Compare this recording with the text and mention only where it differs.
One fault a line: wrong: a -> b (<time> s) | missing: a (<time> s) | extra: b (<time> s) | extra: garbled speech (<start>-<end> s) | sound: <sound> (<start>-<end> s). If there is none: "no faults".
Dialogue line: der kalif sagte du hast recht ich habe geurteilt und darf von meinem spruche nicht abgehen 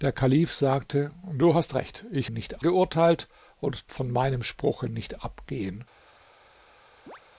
wrong: habe -> nicht (2.3 s)
missing: darf (3.9 s)
sound: chirp (7.1-7.2 s)